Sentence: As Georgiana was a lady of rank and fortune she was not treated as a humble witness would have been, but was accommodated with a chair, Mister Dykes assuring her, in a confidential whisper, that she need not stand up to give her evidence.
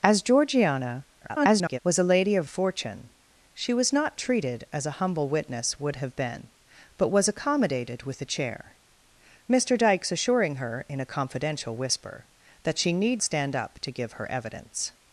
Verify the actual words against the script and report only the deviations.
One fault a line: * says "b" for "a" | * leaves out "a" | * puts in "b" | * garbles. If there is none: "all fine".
* garbles
* leaves out "rank and"
* leaves out "not"